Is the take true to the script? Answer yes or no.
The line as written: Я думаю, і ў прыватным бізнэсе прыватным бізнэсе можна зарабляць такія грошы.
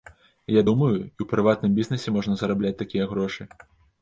no